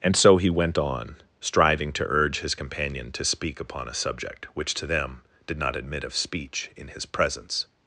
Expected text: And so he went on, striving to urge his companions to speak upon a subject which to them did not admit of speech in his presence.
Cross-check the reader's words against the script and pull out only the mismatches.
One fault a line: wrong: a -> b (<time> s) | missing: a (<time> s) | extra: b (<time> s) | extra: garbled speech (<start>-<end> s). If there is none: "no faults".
wrong: companions -> companion (2.5 s)